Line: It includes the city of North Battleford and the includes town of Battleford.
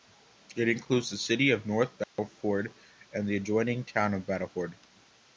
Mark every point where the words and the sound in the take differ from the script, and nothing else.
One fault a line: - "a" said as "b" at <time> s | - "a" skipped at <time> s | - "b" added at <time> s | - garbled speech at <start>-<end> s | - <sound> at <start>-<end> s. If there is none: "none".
- dropout at 2.0-2.2 s
- "includes" said as "adjoining" at 3.4 s